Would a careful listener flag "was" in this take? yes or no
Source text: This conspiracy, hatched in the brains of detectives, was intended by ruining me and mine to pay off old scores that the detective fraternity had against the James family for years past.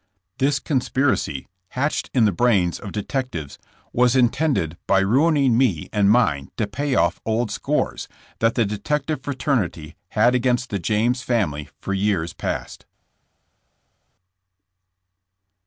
no